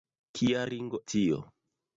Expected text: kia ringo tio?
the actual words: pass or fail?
pass